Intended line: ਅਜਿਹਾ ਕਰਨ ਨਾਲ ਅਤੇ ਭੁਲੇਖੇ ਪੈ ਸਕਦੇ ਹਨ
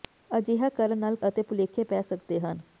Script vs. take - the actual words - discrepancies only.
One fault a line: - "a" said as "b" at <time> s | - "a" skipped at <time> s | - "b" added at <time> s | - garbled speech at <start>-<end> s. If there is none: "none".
none